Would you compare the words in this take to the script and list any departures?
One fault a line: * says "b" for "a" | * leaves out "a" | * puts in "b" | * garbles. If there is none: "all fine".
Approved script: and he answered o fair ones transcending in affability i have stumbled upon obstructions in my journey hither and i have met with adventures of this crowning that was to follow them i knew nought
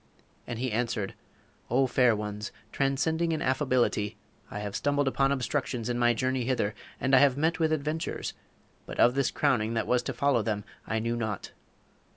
* puts in "but"